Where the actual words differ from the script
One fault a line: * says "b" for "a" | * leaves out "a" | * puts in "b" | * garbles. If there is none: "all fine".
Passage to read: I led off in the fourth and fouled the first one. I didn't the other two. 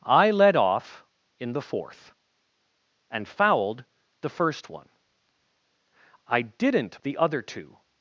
all fine